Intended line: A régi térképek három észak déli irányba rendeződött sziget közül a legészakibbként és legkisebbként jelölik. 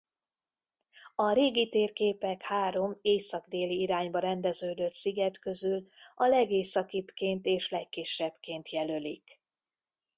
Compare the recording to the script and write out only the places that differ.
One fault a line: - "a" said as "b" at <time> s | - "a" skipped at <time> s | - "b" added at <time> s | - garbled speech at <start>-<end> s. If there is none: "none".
none